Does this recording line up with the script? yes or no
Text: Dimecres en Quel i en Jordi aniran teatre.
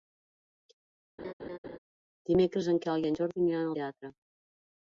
yes